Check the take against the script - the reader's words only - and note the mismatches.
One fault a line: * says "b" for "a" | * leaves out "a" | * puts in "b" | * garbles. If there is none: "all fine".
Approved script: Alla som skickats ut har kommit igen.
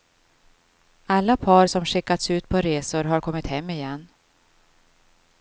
* puts in "par"
* puts in "på resor"
* puts in "hem"